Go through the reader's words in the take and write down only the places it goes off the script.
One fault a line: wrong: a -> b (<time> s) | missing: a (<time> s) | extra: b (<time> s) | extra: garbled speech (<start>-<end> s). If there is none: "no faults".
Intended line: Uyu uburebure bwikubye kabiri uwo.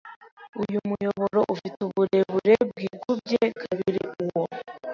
extra: muyoboro ufite (0.9 s)